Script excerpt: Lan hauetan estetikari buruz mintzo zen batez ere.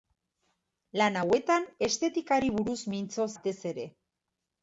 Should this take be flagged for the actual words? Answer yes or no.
yes